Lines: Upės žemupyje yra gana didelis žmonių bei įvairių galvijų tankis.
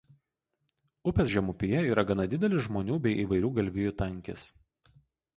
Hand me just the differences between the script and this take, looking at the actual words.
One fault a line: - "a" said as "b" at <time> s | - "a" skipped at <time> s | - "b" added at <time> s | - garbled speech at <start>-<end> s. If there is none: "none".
none